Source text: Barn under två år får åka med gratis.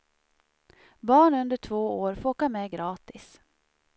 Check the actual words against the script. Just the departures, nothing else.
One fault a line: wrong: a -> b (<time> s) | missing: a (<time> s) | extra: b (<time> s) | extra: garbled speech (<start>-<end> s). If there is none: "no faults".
no faults